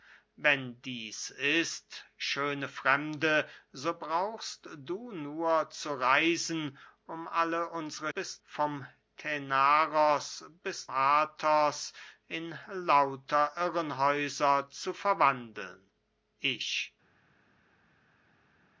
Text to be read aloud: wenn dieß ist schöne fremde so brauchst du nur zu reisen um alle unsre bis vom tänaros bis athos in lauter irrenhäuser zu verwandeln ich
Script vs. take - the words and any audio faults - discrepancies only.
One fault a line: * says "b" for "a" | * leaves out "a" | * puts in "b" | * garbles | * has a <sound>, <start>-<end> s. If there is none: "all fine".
all fine